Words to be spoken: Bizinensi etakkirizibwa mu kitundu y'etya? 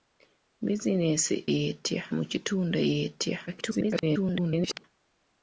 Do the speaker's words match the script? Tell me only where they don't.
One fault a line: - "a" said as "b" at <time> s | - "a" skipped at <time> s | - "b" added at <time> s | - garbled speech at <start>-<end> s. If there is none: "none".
- "etakkirizibwa" said as "y'etya" at 1.5 s
- garbled speech at 3.5-4.8 s